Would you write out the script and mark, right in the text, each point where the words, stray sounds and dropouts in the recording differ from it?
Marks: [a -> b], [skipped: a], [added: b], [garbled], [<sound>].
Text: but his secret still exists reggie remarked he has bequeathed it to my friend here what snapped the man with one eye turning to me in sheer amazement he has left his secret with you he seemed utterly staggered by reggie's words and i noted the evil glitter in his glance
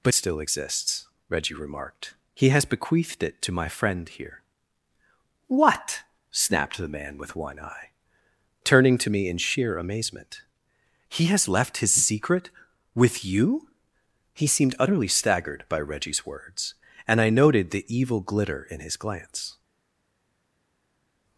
but [skipped: his secret] still exists reggie remarked he has bequeathed it to my friend here what snapped the man with one eye turning to me in sheer amazement he has left his secret with you he seemed utterly staggered by reggie's words and i noted the evil glitter in his glance